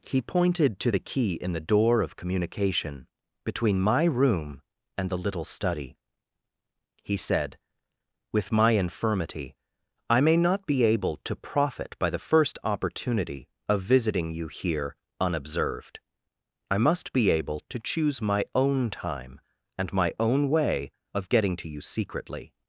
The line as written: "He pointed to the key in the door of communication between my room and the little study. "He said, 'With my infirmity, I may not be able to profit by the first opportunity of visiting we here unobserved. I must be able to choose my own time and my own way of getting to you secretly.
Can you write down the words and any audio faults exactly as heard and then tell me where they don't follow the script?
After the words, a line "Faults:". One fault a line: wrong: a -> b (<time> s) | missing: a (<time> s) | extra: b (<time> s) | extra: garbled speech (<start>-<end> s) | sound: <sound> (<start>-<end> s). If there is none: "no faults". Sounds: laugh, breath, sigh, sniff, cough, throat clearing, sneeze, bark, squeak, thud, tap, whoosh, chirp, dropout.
"He pointed to the key in the door of communication between my room and the little study. "He said, 'With my infirmity, I may not be able to profit by the first opportunity of visiting you here unobserved. I must be able to choose my own time and my own way of getting to you secretly.
Faults:
wrong: we -> you (14.3 s)